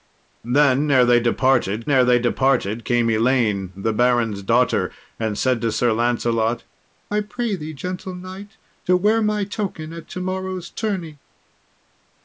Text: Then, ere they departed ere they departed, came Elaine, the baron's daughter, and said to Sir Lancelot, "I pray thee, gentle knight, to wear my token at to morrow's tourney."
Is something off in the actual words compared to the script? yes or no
no